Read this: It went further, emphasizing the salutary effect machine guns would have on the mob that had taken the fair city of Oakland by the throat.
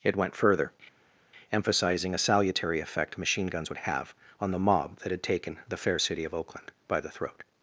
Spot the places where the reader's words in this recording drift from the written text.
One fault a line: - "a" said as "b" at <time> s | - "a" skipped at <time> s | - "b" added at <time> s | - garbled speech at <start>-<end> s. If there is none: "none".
- "the" said as "a" at 2.1 s